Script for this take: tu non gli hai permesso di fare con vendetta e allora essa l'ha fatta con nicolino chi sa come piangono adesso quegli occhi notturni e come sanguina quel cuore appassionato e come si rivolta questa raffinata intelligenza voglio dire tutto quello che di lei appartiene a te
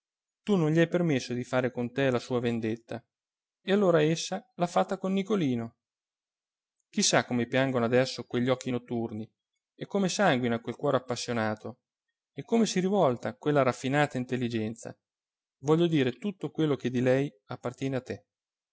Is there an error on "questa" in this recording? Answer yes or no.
yes